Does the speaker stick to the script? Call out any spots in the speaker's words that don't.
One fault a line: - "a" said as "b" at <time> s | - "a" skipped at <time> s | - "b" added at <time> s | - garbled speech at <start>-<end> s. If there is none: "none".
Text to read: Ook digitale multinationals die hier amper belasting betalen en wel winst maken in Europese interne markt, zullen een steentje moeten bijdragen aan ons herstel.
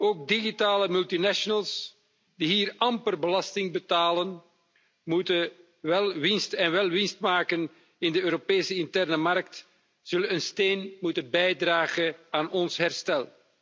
- "de" added at 8.1 s